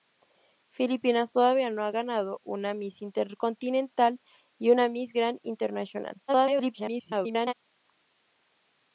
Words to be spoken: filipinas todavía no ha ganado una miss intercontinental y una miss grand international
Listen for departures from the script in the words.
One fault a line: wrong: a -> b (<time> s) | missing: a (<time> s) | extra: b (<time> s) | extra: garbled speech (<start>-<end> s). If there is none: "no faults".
extra: garbled speech (6.3-7.5 s)